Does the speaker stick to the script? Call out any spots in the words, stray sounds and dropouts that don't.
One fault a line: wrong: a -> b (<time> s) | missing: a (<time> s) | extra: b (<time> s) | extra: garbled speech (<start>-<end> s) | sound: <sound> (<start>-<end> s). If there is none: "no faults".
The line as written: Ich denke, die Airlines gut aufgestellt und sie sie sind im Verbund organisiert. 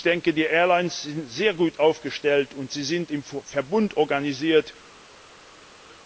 extra: sind sehr (1.0 s)
missing: sie (2.8 s)